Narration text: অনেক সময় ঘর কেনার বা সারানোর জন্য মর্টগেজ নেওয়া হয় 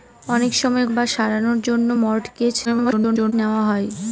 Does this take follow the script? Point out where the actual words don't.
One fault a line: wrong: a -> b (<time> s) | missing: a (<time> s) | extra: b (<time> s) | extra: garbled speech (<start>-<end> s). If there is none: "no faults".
missing: ঘর কেনার (0.8 s)
extra: garbled speech (2.6-3.3 s)